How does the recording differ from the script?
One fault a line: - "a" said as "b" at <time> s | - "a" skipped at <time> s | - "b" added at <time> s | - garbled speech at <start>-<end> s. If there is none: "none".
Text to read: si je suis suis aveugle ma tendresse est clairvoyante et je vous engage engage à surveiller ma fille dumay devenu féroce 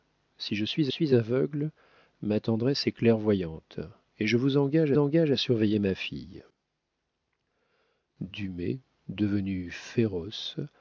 none